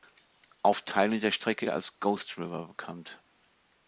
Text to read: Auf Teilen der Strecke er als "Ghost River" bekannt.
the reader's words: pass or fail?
pass